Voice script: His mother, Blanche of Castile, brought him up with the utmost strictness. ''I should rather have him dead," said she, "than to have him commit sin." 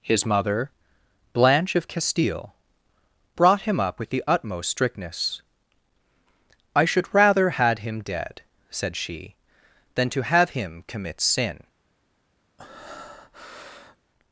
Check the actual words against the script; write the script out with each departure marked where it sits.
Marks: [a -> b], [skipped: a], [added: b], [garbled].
His mother, Blanche of Castile, brought him up with the utmost strictness. ''I should rather [have -> had] him dead," said she, "than to have him commit sin."